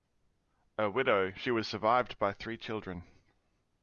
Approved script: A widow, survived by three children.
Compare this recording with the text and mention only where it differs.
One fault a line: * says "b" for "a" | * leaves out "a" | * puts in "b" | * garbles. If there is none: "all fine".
* puts in "she was"